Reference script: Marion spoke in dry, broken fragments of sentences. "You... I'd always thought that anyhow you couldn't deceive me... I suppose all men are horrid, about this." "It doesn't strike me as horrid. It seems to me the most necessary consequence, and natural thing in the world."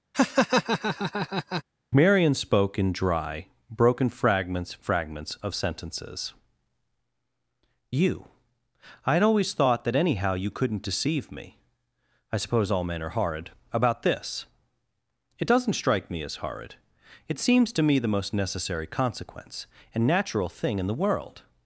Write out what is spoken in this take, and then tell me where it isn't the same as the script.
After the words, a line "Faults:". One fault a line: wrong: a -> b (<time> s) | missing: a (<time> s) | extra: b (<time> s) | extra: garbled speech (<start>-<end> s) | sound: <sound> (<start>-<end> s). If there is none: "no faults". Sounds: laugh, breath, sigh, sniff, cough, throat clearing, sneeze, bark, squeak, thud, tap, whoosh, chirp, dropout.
Marion spoke in dry, broken fragments fragments of sentences. "You... I'd always thought that anyhow you couldn't deceive me... I suppose all men are horrid, about this." "It doesn't strike me as horrid. It seems to me the most necessary consequence, and natural thing in the world."
Faults:
sound: laugh (0.1-1.6 s)
extra: fragments (4.7 s)